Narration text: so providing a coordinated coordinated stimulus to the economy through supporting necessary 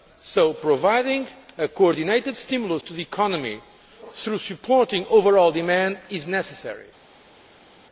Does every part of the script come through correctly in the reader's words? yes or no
no